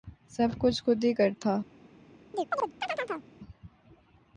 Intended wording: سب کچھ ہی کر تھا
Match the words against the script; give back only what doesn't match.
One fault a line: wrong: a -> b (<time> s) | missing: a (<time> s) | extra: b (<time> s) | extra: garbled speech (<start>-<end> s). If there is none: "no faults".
extra: خود (0.8 s)